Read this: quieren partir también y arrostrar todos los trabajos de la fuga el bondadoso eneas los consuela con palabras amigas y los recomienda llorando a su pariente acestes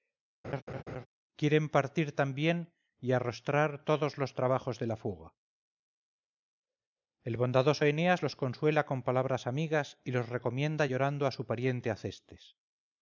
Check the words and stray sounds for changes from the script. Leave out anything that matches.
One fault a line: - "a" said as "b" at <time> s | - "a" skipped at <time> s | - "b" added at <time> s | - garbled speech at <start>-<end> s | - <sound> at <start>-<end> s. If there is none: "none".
- laugh at 0.4-1.1 s